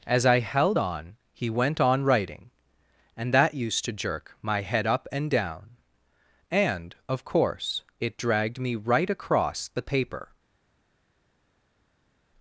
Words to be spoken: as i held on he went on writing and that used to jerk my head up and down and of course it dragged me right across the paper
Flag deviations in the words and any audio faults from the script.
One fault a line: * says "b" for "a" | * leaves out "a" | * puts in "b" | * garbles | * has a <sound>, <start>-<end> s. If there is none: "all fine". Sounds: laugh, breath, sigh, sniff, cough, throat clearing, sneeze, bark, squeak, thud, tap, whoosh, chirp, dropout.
all fine